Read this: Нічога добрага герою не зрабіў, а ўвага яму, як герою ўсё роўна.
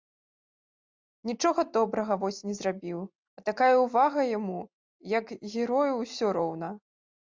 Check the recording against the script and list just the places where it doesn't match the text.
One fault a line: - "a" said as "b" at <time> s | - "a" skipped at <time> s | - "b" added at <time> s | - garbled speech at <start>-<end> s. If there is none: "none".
- "герою" said as "вось" at 2.2 s
- "такая" added at 3.5 s